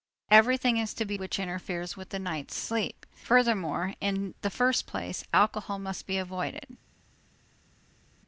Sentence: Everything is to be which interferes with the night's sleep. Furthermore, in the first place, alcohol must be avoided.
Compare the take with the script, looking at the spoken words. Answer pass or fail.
pass